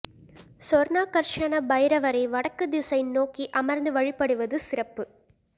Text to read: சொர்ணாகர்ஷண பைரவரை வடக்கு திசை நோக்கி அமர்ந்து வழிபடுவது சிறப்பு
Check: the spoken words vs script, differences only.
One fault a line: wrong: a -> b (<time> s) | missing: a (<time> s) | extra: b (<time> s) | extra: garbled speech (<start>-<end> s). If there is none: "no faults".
no faults